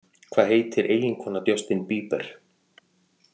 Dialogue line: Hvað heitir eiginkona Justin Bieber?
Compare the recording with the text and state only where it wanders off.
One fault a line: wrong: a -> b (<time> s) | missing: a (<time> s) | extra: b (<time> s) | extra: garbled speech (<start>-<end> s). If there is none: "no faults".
no faults